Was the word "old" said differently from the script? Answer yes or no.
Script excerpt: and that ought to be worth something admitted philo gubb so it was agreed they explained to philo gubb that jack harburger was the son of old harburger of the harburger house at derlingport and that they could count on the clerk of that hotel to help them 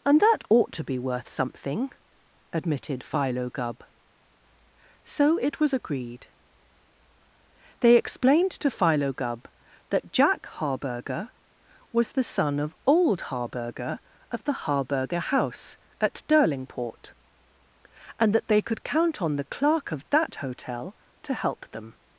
no